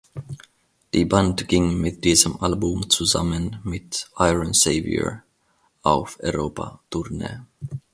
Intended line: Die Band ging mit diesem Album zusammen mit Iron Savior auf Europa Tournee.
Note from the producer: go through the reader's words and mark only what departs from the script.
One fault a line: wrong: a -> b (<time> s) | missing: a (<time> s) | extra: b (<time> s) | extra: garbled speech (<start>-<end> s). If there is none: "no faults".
no faults